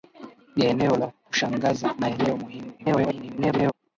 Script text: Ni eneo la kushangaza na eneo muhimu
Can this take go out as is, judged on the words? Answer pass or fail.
fail